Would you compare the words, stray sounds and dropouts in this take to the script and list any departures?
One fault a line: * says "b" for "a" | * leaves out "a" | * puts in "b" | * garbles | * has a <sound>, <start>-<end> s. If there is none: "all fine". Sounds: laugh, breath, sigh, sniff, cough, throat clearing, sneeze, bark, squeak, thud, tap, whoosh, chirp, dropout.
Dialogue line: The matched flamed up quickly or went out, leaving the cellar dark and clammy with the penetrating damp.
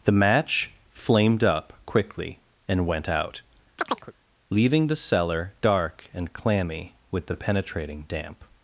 * says "match" for "matched"
* says "and" for "or"
* has a chirp, 3.8-4.1 s